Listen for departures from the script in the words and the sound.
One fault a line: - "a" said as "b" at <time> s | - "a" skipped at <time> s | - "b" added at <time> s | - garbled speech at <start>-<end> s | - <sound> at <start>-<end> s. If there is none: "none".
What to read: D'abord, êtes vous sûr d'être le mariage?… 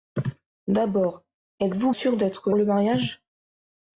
none